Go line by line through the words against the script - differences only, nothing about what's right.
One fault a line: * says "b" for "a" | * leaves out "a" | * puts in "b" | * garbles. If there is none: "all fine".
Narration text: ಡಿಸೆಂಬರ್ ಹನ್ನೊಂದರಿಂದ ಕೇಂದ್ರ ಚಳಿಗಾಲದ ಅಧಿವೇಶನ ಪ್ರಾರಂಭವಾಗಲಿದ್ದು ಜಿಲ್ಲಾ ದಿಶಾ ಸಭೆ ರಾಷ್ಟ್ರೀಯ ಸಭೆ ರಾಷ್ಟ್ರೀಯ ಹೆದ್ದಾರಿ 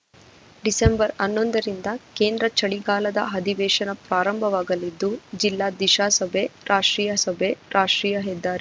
all fine